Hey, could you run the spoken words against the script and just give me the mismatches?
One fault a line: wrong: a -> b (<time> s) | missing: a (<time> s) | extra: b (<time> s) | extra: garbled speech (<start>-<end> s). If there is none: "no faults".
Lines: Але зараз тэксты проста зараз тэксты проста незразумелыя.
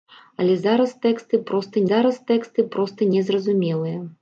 no faults